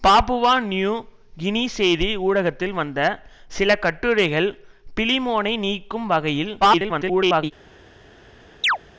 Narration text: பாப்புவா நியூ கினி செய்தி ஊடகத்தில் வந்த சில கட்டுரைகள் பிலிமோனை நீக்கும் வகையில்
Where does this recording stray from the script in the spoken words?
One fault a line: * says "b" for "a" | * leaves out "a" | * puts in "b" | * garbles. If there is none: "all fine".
* garbles